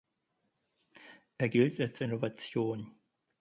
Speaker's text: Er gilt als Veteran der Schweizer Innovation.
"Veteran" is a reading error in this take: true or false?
true